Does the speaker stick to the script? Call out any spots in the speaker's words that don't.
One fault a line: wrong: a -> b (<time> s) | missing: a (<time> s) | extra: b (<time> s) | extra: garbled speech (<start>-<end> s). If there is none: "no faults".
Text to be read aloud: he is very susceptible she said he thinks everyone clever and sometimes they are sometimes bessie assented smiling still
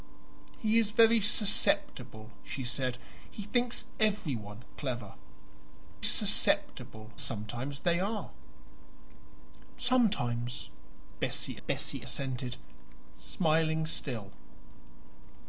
wrong: and -> susceptible (6.0 s)
extra: bessie (11.7 s)